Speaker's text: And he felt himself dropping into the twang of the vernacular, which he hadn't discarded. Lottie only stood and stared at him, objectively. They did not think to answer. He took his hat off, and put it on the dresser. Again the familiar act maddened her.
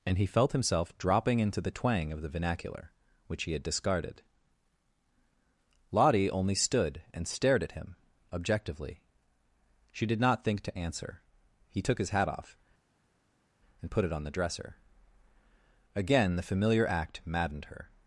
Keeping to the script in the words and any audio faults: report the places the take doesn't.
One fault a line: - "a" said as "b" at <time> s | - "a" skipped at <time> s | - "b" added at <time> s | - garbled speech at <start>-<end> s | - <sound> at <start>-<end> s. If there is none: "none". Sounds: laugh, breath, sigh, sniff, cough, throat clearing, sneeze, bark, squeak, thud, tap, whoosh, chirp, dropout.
- "hadn't" said as "had" at 3.5 s
- "They" said as "She" at 9.9 s